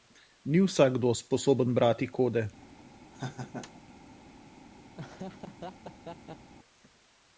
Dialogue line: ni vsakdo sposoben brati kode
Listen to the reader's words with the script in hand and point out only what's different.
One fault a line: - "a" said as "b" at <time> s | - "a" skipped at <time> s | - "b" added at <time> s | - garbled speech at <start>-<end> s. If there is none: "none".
none